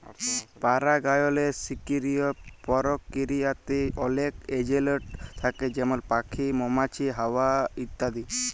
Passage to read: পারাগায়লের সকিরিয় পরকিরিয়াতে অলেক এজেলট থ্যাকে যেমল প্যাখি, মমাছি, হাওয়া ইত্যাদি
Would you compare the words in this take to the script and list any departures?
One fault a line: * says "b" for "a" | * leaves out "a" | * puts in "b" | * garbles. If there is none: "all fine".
all fine